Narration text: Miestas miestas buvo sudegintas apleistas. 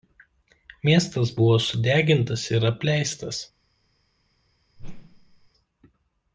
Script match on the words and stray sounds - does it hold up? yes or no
no